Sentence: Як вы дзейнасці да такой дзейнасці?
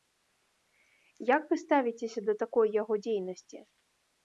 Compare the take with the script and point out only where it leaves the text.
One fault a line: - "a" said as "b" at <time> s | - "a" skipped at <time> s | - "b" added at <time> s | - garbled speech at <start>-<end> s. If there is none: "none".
- "дзейнасці" said as "ставіцеся" at 1.6 s
- "яго" added at 2.8 s